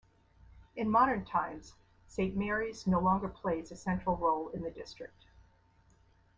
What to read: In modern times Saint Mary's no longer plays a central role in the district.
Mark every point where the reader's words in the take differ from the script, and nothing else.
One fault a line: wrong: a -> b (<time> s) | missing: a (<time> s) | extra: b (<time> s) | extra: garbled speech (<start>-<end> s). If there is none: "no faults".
no faults